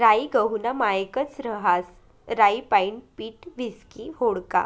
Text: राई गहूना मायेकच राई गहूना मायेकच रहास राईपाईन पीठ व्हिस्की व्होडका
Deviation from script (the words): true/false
true